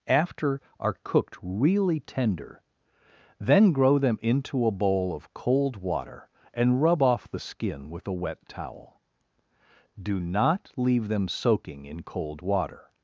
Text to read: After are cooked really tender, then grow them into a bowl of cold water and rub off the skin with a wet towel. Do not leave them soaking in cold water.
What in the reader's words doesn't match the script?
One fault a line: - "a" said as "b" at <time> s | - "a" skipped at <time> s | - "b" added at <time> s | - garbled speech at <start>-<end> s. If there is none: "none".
none